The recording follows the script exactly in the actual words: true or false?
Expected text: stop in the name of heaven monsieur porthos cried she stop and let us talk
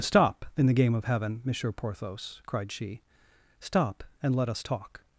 false